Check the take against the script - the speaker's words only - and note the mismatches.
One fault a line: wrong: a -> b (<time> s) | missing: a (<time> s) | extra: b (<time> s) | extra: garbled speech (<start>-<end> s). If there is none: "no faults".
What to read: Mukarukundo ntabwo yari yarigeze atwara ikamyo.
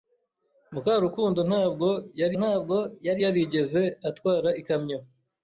extra: ntabwo yari (2.4 s)